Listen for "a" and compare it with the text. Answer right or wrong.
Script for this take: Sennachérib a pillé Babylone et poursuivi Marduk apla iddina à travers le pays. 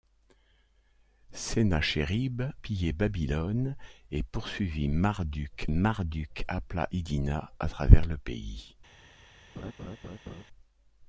wrong